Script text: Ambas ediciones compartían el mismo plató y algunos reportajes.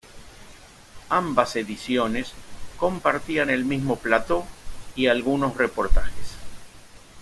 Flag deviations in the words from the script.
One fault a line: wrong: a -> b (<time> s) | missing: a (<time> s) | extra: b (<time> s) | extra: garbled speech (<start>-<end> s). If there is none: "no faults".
no faults